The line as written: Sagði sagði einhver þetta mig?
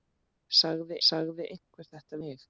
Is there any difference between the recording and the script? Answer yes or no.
no